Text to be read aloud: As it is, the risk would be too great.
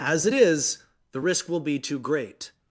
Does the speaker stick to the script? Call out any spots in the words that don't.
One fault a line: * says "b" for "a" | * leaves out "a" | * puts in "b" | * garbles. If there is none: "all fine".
* says "will" for "would"